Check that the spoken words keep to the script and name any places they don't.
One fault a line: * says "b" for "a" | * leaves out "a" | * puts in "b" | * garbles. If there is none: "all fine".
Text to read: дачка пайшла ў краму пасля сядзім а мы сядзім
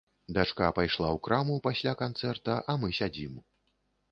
* says "канцэрта" for "сядзім"